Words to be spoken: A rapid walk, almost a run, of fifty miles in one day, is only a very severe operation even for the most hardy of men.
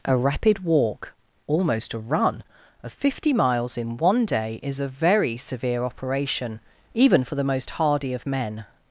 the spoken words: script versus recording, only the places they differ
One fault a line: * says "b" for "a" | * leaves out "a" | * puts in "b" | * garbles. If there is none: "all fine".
* leaves out "only"